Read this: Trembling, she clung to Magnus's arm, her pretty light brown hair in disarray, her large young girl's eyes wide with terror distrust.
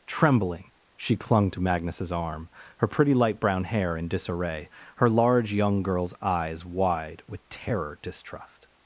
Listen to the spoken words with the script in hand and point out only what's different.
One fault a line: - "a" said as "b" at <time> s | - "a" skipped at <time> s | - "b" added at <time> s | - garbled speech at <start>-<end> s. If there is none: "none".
none